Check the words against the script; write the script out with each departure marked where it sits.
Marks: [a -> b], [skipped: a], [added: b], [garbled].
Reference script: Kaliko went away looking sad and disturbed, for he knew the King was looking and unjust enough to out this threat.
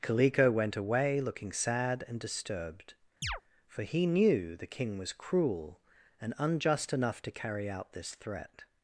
Kaliko went away looking sad and disturbed, for he knew the King was [looking -> cruel] and unjust enough to [added: carry] out this threat.